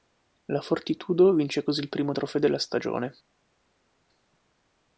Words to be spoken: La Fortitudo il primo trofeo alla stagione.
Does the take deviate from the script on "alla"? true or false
true